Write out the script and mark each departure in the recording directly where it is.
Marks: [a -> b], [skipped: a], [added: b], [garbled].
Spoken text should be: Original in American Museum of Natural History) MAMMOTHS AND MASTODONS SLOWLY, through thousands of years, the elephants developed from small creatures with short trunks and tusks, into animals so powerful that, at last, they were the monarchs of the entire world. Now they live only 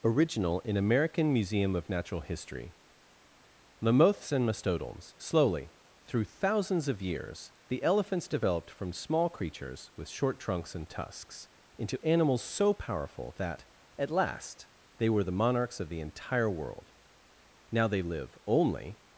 Original in American Museum of Natural History) MAMMOTHS AND MASTODONS SLOWLY, through thousands of years, the elephants developed from small creatures with short trunks and tusks, into animals so powerful that, at last, they were the monarchs of the entire world. Now they live only